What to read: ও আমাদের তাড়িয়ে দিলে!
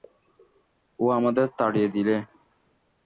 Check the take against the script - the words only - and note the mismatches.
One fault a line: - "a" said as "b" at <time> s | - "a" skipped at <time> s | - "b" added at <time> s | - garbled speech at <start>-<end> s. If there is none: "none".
none